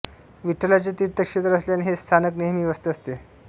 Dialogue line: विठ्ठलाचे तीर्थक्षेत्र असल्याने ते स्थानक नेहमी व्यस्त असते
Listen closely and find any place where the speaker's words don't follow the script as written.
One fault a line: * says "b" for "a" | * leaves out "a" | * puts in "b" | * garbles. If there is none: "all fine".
* says "हे" for "ते"